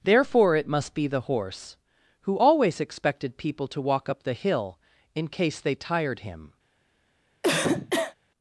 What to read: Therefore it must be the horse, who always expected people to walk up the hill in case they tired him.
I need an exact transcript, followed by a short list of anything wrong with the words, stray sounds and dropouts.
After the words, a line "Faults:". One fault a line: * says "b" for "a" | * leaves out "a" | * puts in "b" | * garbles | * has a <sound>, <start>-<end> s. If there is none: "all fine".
Therefore it must be the horse, who always expected people to walk up the hill in case they tired him.
Faults:
* has a cough, 7.4-8.1 s